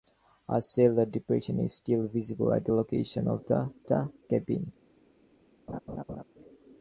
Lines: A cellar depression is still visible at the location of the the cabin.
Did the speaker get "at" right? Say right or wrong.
right